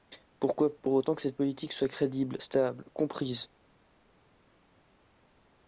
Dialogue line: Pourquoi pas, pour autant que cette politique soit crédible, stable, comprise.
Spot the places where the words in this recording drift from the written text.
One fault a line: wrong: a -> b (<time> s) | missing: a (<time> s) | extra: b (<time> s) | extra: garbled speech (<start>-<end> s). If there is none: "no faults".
missing: pas (0.8 s)